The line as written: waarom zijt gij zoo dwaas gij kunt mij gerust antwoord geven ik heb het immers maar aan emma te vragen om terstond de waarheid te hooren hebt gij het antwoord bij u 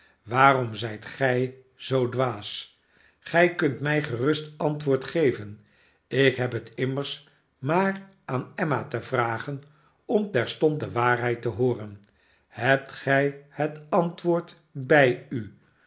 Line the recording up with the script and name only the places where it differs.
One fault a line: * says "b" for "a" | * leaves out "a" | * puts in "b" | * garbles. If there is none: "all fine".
all fine